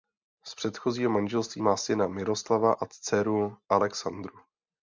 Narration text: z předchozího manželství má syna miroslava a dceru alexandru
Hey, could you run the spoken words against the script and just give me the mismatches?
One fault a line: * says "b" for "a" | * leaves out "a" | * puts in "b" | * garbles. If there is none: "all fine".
all fine